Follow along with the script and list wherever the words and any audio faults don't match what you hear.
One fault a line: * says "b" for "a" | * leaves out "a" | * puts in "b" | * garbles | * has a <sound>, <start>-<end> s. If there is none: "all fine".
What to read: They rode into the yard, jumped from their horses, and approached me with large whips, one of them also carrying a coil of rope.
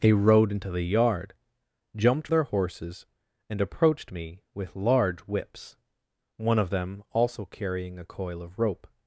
* leaves out "from"